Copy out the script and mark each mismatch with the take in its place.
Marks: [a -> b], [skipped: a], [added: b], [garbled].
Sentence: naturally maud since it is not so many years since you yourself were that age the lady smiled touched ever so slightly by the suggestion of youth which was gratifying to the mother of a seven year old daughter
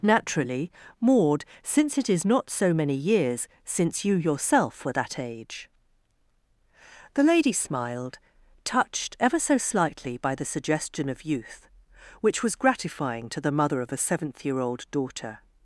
naturally maud since it is not so many years since you yourself were that age the lady smiled touched ever so slightly by the suggestion of youth which was gratifying to the mother of a [seven -> seventh] year old daughter